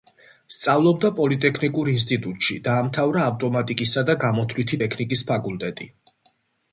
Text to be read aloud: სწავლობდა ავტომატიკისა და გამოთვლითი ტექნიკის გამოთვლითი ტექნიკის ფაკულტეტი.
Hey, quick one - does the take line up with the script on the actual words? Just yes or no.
no